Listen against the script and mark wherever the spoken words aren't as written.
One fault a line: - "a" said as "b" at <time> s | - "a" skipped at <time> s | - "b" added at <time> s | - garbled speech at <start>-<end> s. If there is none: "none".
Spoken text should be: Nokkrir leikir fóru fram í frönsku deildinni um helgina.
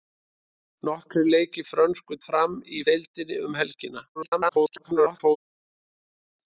- "fóru" said as "frönsku" at 1.7 s
- "frönsku" skipped at 2.8 s
- garbled speech at 4.2-5.4 s